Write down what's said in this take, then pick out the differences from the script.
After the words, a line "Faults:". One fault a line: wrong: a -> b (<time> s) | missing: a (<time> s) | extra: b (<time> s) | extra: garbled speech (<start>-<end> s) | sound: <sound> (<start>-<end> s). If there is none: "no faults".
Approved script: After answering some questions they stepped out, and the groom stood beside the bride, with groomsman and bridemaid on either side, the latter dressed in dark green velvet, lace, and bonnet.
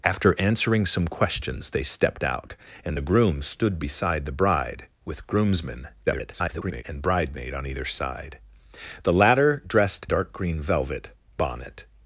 After answering some questions they stepped out, and the groom stood beside the bride, with groomsman [garbled] and bridemaid on either side, the latter dressed dark green velvet, bonnet.
Faults:
extra: garbled speech (6.1-6.8 s)
missing: in (10.1 s)
missing: lace and (11.1 s)